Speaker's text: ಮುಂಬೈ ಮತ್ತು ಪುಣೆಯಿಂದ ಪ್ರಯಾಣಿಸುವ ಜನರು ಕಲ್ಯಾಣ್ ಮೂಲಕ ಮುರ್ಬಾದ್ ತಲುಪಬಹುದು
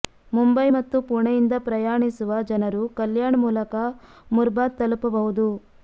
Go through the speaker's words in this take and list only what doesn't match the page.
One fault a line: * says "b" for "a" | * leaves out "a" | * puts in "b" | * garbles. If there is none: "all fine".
all fine